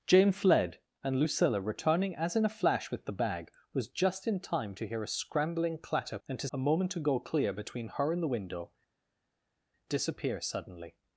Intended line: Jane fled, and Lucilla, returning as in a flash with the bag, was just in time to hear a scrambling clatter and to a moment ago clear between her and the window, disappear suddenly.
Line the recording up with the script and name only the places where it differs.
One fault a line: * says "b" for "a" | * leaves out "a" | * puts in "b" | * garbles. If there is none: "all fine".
all fine